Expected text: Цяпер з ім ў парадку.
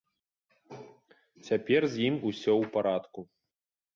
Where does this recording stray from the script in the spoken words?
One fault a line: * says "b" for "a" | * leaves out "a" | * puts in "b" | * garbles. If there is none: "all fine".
* puts in "усё"